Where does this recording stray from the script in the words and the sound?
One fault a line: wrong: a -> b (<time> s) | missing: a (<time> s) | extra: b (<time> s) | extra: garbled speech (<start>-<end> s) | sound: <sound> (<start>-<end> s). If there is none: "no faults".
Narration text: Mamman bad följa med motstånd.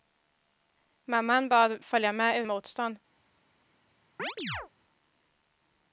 sound: chirp (4.2-4.7 s)